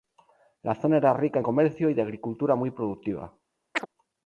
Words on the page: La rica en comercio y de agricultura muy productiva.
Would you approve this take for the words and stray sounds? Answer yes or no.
no